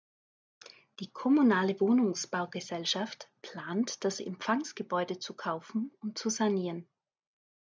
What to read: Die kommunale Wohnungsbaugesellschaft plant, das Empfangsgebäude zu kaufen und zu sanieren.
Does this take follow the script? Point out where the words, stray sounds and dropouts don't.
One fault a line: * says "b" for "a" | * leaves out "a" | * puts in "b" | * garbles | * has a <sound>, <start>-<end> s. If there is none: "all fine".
all fine